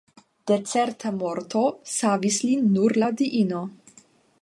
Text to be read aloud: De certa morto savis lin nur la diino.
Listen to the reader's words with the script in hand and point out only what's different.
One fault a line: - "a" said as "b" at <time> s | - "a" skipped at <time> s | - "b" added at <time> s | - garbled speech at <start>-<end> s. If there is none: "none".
none